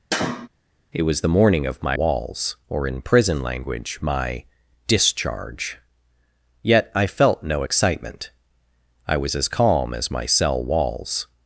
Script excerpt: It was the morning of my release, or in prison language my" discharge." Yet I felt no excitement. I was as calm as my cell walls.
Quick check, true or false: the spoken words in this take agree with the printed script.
false